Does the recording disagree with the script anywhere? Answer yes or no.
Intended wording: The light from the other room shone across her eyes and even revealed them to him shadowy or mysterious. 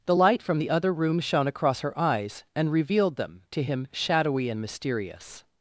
yes